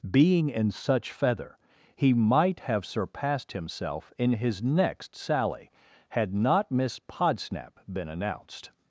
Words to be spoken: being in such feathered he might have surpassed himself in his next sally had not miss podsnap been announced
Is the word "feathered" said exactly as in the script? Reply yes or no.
no